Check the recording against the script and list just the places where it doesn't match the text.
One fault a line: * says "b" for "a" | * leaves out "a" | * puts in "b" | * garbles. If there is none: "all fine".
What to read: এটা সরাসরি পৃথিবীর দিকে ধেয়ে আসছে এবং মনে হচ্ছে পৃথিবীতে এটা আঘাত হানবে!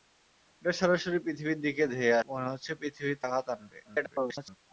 * leaves out "আসছে এবং"
* leaves out "এটা"
* garbles